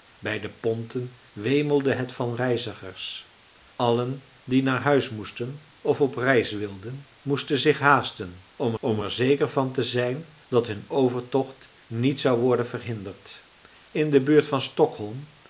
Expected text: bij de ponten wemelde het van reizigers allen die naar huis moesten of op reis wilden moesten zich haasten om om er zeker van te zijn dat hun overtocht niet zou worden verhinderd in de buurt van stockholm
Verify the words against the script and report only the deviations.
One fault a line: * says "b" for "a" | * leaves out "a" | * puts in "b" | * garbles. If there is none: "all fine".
all fine